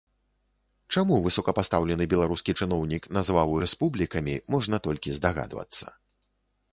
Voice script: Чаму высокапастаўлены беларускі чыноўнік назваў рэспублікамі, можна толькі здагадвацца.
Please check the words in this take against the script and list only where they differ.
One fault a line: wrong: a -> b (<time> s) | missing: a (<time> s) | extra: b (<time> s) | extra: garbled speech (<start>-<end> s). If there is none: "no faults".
no faults